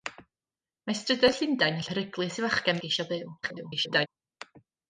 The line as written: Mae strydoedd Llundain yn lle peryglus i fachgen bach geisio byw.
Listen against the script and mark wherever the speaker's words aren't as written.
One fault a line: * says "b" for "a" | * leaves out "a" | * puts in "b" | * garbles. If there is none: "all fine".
* leaves out "lle"
* leaves out "bach"
* garbles